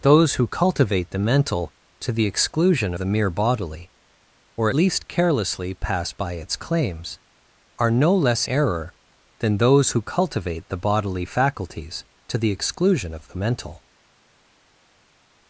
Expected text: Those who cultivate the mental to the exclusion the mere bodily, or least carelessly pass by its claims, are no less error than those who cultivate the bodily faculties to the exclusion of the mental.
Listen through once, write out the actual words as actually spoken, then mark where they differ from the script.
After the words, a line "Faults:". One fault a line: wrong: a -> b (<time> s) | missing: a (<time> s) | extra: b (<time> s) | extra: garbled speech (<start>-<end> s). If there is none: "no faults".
Those who cultivate the mental to the exclusion the mere bodily, or least carelessly pass by its claims, are no less error than those who cultivate the bodily faculties to the exclusion of the mental.
Faults:
no faults